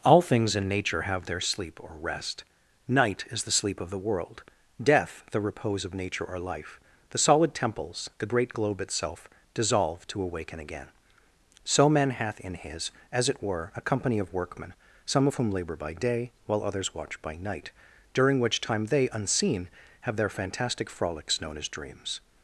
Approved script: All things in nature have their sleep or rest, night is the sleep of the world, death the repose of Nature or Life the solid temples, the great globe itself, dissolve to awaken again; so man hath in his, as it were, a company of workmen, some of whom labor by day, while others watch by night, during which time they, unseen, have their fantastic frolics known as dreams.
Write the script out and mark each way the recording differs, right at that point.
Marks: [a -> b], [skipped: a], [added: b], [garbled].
All things in nature have their sleep or rest, night is the sleep of the world, death the repose of Nature or Life the solid temples, the great globe itself, dissolve to awaken again; so man hath in his, as it were, a company of workmen, some of whom labor by day, while others watch by night, during which time they, unseen, have their fantastic frolics known as dreams.